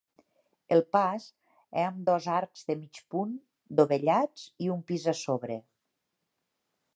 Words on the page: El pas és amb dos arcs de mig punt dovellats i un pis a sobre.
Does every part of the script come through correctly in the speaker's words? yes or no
yes